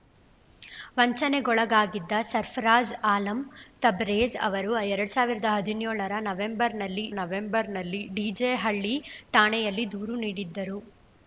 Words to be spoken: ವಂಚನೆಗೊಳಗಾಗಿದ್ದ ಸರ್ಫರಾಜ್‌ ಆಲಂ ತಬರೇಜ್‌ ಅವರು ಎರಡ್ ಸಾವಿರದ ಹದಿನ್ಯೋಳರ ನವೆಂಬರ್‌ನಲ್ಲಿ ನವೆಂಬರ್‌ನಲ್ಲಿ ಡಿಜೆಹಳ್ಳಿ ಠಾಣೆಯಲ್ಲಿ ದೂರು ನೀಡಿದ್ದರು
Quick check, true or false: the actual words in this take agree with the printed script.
true